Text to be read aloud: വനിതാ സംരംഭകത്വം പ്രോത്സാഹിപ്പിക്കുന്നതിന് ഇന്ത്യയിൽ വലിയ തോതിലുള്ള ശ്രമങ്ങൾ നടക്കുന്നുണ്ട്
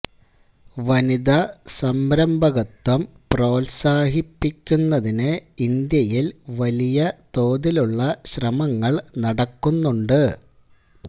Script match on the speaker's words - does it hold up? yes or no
yes